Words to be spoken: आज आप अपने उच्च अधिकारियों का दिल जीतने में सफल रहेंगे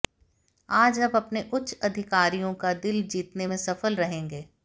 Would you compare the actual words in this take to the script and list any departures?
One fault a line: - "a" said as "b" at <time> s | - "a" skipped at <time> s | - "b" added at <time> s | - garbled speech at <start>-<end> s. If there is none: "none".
none